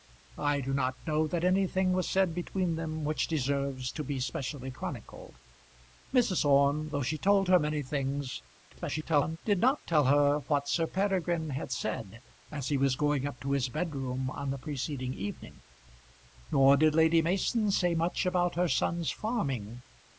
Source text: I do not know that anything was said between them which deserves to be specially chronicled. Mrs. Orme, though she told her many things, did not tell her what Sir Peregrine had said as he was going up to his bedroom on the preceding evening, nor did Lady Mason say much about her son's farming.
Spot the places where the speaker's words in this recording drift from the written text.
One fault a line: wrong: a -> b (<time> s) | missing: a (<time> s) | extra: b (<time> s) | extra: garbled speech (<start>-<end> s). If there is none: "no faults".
extra: garbled speech (8.7-9.4 s)